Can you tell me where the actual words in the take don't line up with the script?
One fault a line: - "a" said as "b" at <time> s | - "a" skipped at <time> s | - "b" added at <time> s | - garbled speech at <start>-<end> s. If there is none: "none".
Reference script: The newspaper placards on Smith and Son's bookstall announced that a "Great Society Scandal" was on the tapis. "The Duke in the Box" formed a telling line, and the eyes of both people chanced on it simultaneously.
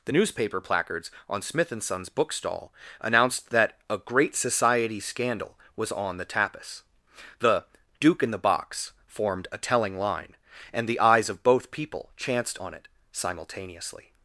none